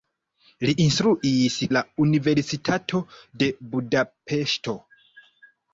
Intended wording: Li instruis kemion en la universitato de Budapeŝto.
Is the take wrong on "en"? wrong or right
wrong